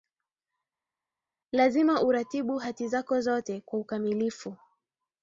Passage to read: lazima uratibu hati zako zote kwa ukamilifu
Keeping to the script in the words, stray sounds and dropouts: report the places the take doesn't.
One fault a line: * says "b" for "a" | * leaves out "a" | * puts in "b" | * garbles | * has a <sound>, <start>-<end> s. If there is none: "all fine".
all fine